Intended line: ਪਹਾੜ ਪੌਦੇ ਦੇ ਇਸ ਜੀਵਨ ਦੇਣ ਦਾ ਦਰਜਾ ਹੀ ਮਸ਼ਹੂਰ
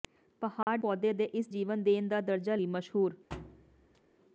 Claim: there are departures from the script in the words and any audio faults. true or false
true